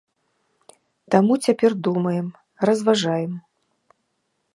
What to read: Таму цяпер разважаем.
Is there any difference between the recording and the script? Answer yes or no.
yes